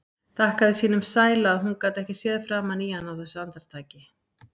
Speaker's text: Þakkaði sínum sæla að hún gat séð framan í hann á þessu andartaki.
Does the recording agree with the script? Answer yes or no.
no